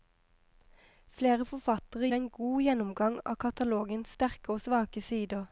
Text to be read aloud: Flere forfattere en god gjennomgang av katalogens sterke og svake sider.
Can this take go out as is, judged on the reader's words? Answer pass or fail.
pass